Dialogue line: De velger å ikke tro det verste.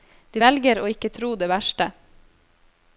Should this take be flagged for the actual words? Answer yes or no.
no